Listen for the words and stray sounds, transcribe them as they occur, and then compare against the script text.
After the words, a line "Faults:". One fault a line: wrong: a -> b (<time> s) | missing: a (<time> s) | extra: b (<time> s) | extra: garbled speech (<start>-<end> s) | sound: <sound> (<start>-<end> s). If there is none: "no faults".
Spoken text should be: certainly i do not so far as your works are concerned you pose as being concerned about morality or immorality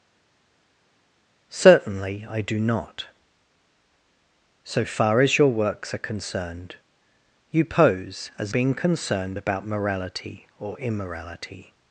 certainly i do not so far as your works are concerned you pose as being concerned about morality or immorality
Faults:
no faults